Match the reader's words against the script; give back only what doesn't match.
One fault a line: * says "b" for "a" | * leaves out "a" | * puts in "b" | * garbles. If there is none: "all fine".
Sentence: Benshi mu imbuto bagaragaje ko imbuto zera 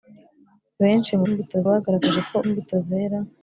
all fine